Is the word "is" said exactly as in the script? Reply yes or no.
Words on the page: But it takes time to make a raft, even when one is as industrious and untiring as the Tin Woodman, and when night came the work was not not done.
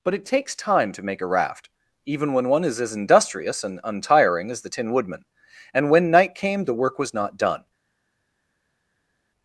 yes